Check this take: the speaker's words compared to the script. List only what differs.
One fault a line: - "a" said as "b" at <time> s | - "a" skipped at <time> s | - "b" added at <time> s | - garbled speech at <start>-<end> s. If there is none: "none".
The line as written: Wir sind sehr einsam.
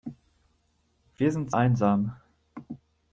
- "sehr" skipped at 1.5 s